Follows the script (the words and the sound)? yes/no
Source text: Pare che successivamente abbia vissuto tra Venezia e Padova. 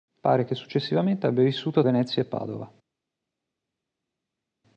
no